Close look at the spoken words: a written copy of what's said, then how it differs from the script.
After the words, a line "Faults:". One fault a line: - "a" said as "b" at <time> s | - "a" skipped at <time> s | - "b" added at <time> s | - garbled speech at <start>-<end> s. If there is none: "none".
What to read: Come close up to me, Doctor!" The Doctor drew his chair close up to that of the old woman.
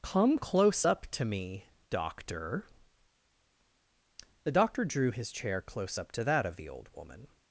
Come close up to me, Doctor!" The Doctor drew his chair close up to that of the old woman.
Faults:
none